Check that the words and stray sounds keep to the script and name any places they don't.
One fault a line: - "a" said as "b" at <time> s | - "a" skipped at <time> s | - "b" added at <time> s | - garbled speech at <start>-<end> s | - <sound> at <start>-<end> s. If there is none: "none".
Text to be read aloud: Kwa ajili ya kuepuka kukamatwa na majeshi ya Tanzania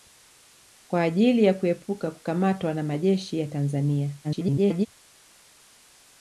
- garbled speech at 4.2-4.9 s